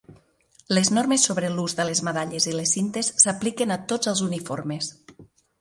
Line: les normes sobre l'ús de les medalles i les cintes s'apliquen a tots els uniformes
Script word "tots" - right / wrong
right